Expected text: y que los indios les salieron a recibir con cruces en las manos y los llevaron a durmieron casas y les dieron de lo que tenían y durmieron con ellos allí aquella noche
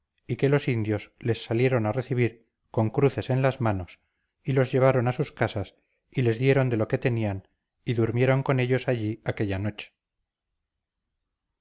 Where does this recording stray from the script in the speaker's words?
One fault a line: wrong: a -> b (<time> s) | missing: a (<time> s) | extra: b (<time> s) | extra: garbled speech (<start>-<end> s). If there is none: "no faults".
wrong: durmieron -> sus (5.1 s)